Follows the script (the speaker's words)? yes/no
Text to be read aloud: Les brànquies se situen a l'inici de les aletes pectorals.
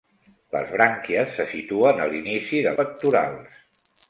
no